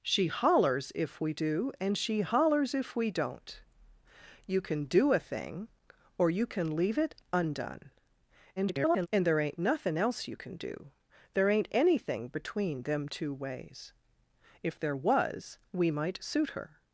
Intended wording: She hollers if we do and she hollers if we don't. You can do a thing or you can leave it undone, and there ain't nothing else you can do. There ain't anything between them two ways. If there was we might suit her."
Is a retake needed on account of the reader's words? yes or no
yes